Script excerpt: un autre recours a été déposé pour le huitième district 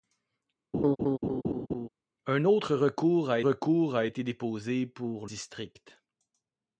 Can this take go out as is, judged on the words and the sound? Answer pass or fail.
fail